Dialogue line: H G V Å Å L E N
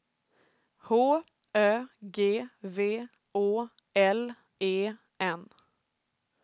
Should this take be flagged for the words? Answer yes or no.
yes